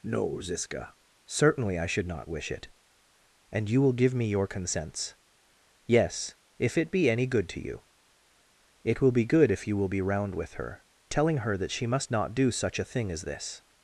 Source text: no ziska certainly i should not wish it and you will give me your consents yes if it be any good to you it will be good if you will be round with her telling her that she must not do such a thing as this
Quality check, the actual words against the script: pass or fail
pass